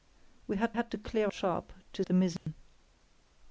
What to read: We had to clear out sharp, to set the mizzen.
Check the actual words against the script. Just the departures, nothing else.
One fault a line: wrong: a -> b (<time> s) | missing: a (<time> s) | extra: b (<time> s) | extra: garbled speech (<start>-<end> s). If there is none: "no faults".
extra: had (0.7 s)
missing: out (1.3 s)
missing: set (2.0 s)